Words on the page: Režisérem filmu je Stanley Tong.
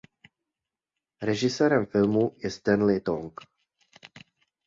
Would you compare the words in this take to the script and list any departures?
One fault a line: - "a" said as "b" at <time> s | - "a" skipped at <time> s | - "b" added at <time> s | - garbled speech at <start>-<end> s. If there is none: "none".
none